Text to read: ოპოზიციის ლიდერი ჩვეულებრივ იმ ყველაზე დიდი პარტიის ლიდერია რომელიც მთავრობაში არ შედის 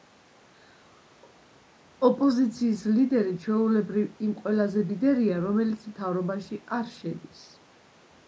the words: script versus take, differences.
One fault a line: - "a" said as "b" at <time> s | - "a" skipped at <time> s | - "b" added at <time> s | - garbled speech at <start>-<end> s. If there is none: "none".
- "დიდი პარტიის" skipped at 4.8 s